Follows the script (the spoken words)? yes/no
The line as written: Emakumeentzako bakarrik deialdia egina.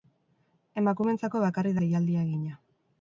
yes